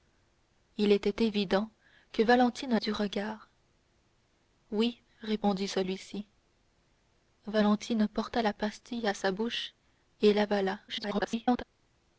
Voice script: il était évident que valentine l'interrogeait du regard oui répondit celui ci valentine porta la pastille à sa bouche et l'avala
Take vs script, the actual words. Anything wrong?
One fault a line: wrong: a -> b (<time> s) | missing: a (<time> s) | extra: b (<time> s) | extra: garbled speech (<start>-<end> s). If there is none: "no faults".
missing: l'interrogeait (2.8 s)
extra: garbled speech (10.9-11.6 s)